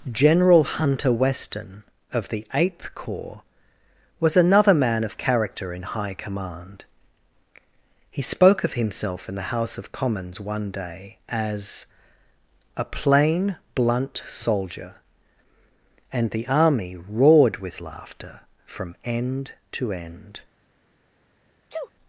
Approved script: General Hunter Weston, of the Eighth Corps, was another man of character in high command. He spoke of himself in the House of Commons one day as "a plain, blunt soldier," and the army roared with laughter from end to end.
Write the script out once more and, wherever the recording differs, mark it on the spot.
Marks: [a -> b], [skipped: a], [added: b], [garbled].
General Hunter Weston, of the Eighth Corps, was another man of character in high command. He spoke of himself in the House of Commons one day as "a plain, blunt soldier," and the army roared with laughter from end to end.